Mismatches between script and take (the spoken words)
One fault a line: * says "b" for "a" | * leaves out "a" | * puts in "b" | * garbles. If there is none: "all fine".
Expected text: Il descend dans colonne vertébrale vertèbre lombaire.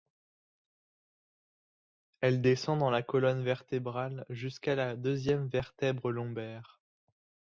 * says "Elle" for "Il"
* puts in "la"
* puts in "jusqu'à la deuxième"